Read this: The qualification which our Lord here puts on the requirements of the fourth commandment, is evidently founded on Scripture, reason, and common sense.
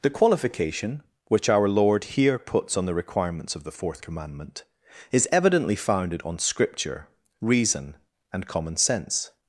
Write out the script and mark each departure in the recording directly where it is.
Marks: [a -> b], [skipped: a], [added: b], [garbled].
The qualification which our Lord here puts on the requirements of the fourth commandment, is evidently founded on Scripture, reason, and common sense.